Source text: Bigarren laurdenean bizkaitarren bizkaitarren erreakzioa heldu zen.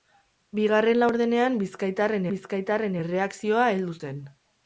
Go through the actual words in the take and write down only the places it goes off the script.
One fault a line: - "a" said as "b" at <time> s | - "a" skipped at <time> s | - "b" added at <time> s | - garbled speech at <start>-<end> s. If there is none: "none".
none